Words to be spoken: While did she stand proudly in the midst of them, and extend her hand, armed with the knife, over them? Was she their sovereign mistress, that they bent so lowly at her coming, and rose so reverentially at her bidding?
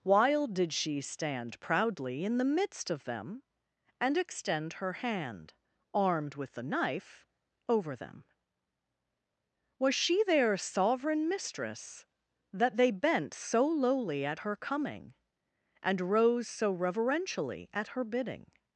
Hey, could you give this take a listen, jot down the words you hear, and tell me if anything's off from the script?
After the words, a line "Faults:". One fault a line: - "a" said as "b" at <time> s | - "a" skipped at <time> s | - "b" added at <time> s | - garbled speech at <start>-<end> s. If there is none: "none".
While did she stand proudly in the midst of them, and extend her hand, armed with the knife, over them? Was she their sovereign mistress, that they bent so lowly at her coming, and rose so reverentially at her bidding?
Faults:
none